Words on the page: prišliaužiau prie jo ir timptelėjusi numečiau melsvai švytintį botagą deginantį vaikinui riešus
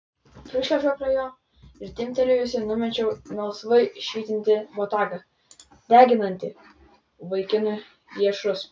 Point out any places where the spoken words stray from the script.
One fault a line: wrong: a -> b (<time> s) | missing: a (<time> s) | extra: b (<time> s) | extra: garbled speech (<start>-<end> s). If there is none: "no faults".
no faults